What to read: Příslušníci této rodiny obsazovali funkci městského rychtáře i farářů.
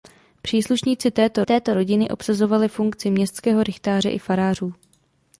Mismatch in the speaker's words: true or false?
true